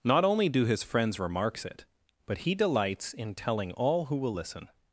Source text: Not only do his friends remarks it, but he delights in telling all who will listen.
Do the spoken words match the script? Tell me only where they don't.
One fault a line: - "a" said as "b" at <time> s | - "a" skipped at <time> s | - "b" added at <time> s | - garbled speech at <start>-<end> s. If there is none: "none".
none